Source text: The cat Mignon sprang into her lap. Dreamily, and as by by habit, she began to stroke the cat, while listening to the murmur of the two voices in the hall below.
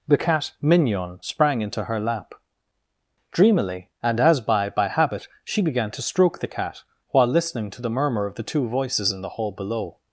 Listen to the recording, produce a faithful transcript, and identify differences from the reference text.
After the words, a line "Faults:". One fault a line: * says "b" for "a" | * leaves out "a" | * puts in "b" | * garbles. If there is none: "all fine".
The cat Mignon sprang into her lap. Dreamily, and as by by habit, she began to stroke the cat, while listening to the murmur of the two voices in the hall below.
Faults:
all fine